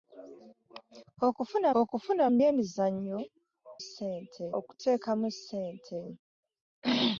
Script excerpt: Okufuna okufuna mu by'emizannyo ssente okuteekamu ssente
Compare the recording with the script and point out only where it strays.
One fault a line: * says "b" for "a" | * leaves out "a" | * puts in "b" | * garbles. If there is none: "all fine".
all fine